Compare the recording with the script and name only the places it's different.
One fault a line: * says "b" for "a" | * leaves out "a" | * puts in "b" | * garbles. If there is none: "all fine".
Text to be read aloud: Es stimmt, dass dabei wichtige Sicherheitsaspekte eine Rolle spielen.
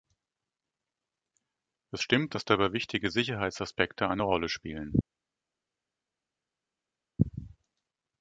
all fine